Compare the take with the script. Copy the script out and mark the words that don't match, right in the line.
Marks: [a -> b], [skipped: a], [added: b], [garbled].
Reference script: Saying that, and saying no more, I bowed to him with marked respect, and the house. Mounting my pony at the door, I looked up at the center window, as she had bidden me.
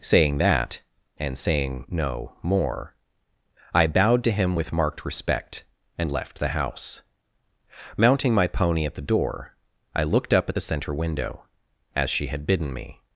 Saying that, and saying no more, I bowed to him with marked respect, and [added: left] the house. Mounting my pony at the door, I looked up at the center window, as she had bidden me.